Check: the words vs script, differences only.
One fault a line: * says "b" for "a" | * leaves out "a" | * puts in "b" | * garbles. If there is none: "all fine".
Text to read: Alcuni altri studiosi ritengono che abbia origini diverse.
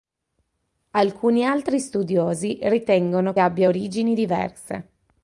* leaves out "che"